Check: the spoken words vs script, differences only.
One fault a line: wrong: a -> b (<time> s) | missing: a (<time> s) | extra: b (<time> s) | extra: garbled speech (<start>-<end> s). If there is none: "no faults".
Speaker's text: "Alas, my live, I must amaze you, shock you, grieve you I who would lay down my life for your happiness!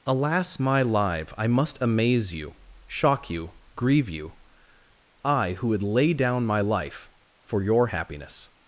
no faults